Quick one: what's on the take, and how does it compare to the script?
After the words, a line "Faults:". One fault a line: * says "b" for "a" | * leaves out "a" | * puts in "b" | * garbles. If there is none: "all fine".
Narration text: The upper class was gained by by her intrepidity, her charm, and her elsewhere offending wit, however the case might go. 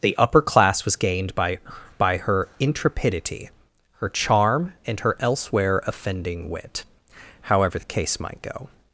The upper class was gained by by her intrepidity, her charm, and her elsewhere offending wit, however the case might go.
Faults:
all fine